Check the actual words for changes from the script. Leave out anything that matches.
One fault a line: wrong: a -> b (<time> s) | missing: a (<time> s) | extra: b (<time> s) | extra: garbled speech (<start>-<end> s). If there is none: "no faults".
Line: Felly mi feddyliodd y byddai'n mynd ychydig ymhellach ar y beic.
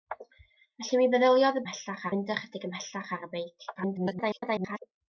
wrong: byddai'n -> ymhellach (1.6 s)
extra: garbled speech (3.8-4.8 s)